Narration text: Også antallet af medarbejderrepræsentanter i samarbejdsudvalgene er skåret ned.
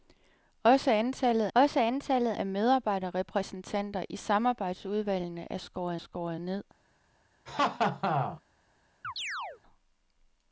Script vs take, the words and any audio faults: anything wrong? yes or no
yes